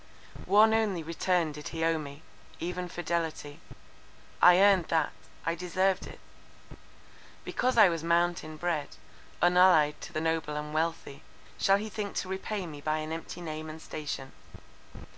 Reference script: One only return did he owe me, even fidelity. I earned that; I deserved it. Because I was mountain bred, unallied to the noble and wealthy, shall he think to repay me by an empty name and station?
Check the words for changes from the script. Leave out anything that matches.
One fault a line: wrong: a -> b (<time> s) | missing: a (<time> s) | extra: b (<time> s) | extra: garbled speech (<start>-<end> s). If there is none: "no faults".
no faults